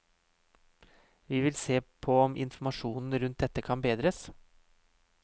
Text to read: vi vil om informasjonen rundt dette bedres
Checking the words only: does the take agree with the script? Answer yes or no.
no